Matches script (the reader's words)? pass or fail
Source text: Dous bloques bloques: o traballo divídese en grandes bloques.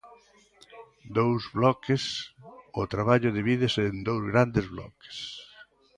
fail